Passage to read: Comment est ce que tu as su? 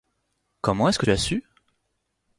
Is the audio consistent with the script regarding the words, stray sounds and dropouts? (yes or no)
no